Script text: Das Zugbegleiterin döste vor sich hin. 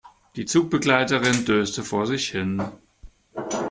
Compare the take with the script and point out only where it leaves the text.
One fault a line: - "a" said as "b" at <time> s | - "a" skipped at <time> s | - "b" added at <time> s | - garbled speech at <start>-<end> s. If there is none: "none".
- "Das" said as "Die" at 0.3 s